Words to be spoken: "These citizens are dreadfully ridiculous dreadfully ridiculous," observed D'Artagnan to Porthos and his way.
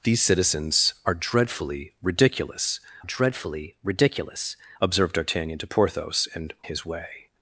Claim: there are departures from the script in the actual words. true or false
false